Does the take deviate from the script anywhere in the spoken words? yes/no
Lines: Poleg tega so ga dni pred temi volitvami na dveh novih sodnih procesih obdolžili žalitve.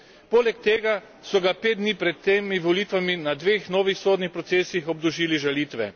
yes